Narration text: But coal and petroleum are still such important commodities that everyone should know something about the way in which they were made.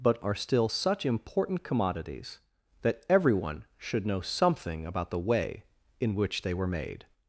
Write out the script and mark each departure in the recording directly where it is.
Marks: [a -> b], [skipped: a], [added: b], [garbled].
But [skipped: coal and petroleum] are still such important commodities that everyone should know something about the way in which they were made.